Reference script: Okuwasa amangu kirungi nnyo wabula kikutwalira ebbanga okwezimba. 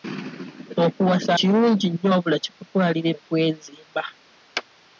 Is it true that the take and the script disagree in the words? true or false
true